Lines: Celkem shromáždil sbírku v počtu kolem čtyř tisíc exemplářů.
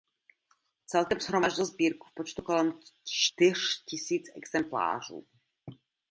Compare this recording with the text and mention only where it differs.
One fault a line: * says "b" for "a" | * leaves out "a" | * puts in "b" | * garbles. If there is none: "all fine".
all fine